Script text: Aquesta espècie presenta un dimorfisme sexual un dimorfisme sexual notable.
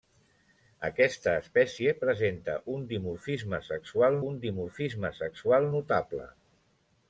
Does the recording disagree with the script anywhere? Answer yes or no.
no